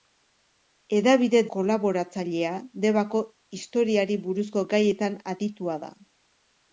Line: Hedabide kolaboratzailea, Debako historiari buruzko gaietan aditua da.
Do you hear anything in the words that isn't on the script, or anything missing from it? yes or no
no